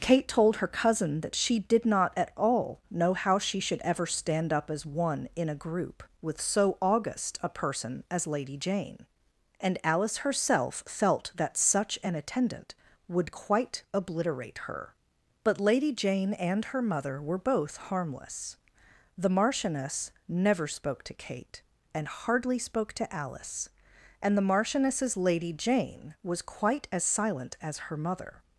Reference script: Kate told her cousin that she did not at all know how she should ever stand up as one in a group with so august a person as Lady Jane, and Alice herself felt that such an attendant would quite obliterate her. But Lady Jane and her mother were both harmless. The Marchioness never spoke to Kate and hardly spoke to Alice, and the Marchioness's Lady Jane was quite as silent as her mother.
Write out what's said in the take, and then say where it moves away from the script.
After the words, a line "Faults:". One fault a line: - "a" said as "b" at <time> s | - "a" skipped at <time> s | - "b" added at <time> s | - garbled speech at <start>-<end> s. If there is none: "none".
Kate told her cousin that she did not at all know how she should ever stand up as one in a group with so august a person as Lady Jane, and Alice herself felt that such an attendant would quite obliterate her. But Lady Jane and her mother were both harmless. The Marchioness never spoke to Kate and hardly spoke to Alice, and the Marchioness's Lady Jane was quite as silent as her mother.
Faults:
none